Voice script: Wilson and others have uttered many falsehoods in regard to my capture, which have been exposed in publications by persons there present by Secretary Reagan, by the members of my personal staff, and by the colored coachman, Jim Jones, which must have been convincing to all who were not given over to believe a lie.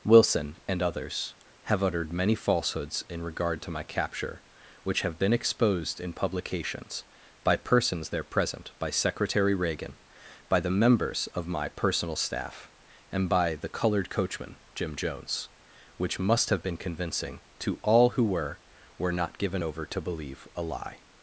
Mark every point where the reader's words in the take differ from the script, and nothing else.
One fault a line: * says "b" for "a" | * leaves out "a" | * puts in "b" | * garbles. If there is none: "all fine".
* puts in "were"